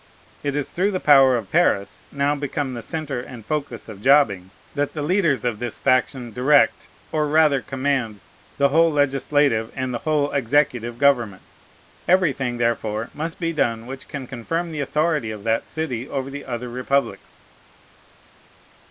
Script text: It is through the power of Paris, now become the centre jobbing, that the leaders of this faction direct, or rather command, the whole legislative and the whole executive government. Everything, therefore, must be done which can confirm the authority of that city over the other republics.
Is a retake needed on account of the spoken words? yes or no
yes